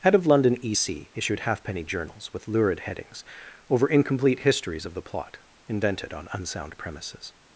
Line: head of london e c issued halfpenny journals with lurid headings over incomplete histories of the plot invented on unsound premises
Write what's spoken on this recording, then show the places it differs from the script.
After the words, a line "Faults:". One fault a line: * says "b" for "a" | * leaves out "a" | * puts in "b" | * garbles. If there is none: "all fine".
head of london e c issued halfpenny journals with lurid headings over incomplete histories of the plot invented on unsound premises
Faults:
all fine